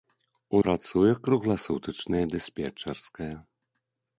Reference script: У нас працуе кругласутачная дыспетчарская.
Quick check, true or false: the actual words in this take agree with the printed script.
false